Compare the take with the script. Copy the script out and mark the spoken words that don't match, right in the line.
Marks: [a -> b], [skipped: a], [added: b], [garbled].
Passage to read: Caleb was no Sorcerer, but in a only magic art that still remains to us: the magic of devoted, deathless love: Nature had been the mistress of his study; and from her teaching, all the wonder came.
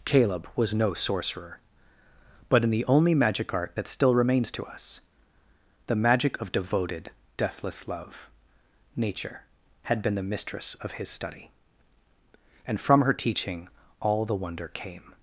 Caleb was no Sorcerer, but in [a -> the] only magic art that still remains to us: the magic of devoted, deathless love: Nature had been the mistress of his study; and from her teaching, all the wonder came.